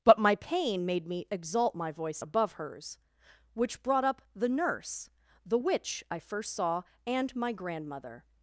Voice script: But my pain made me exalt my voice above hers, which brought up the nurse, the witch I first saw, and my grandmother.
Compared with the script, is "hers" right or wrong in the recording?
right